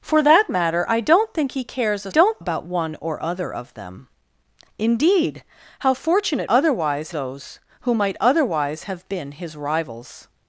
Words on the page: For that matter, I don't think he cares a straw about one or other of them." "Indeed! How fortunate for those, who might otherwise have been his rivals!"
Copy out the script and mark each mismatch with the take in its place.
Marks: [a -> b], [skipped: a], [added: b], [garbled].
For that matter, I don't think he cares a [straw -> don't] about one or other of them." "Indeed! How fortunate [for -> otherwise] those, who might otherwise have been his rivals!"